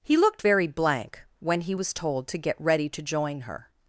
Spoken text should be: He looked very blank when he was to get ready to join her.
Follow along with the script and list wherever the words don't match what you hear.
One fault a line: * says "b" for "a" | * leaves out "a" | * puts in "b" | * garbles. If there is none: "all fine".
* puts in "told"